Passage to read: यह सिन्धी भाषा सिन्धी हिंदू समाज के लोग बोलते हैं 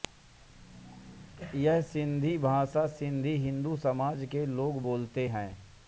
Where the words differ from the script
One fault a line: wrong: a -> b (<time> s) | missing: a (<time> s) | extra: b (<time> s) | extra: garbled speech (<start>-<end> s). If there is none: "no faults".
no faults